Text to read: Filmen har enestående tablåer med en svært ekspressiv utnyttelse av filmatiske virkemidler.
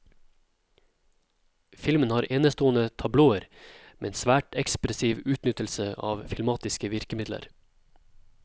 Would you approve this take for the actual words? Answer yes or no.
yes